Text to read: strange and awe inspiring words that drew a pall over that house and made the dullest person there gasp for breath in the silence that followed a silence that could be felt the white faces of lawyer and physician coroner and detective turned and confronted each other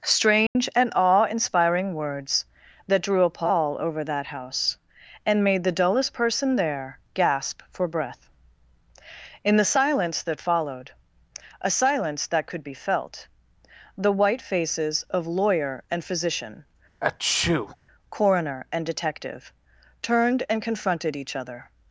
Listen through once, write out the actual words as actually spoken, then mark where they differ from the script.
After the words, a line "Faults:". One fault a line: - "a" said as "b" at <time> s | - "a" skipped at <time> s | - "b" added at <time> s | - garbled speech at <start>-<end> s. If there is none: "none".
strange and awe inspiring words that drew a pall over that house and made the dullest person there gasp for breath in the silence that followed a silence that could be felt the white faces of lawyer and physician coroner and detective turned and confronted each other
Faults:
none